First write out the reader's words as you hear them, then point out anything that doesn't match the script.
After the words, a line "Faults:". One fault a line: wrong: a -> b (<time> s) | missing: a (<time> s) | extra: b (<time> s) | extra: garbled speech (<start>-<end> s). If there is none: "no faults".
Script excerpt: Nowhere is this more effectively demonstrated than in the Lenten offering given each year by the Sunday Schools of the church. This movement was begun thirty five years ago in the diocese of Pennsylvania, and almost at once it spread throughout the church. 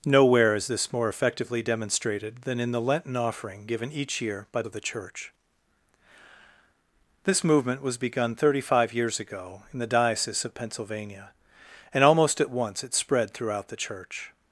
Nowhere is this more effectively demonstrated than in the Lenten offering given each year by of the church. This movement was begun thirty five years ago in the diocese of Pennsylvania, and almost at once it spread throughout the church.
Faults:
missing: the Sunday Schools (4.6 s)